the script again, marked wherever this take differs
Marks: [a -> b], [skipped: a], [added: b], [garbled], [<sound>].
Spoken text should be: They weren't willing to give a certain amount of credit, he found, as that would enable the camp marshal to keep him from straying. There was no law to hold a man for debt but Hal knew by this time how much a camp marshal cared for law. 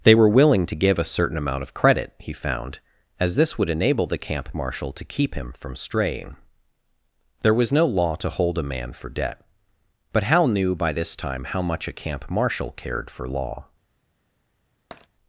They [weren't -> were] willing to give a certain amount of credit, he found, as [that -> this] would enable the camp marshal to keep him from straying. There was no law to hold a man for debt but Hal knew by this time how much a camp marshal cared for law. [tap]